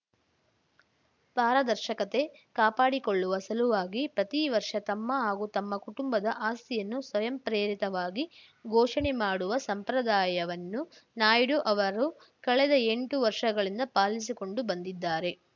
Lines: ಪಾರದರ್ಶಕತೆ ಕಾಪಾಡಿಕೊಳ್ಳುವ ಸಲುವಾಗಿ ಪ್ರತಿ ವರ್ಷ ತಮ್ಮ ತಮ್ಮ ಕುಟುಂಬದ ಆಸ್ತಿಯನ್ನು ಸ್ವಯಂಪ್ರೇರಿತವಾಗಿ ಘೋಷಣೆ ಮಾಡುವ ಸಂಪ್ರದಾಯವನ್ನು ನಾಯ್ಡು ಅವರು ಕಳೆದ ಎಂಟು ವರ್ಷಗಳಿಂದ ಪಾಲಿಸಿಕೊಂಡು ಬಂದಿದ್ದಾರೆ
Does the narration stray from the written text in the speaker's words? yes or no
yes